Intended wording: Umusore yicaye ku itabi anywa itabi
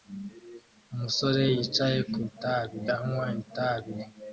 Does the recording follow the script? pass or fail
pass